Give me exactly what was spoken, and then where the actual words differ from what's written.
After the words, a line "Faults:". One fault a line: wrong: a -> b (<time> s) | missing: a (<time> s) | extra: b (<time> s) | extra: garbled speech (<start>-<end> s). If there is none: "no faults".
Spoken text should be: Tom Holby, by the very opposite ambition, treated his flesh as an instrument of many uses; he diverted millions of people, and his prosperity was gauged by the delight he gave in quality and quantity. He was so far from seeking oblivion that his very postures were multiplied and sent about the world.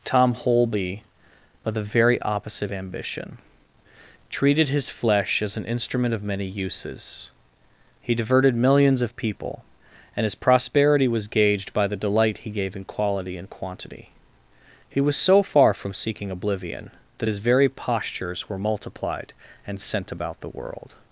Tom Holby, by the very opposite ambition, treated his flesh as an instrument of many uses; he diverted millions of people, and his prosperity was gauged by the delight he gave in quality and quantity. He was so far from seeking oblivion that his very postures were multiplied and sent about the world.
Faults:
no faults